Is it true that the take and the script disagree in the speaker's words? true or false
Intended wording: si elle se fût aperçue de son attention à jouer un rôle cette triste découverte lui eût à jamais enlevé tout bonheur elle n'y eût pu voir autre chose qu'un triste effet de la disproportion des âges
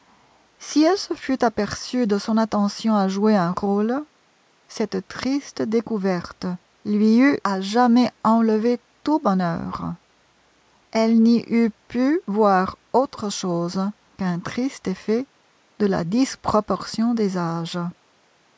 false